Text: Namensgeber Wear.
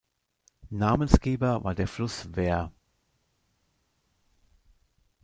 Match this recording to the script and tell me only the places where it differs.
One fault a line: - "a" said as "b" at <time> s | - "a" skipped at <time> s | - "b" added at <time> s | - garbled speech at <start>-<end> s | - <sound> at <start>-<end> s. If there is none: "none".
- "war der Fluss" added at 1.6 s